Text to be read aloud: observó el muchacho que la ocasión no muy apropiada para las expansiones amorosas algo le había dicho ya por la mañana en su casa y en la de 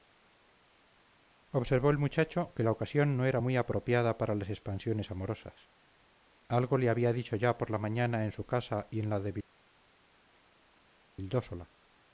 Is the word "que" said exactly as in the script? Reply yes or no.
yes